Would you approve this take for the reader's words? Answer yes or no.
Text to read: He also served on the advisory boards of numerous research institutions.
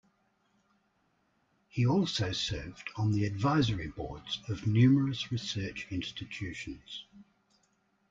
yes